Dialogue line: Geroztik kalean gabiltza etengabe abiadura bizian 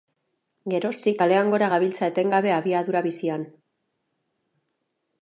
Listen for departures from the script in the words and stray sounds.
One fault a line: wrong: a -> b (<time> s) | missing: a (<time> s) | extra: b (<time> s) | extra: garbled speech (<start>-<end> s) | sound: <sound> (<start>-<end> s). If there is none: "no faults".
extra: gora (1.6 s)